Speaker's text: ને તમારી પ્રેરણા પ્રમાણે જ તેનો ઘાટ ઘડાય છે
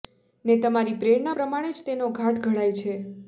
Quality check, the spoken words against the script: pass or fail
pass